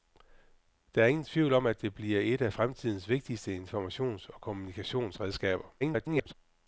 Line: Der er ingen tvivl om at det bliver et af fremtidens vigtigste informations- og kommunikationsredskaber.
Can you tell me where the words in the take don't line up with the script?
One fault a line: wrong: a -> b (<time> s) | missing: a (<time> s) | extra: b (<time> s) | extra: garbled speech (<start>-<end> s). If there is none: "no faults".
extra: garbled speech (5.8-6.3 s)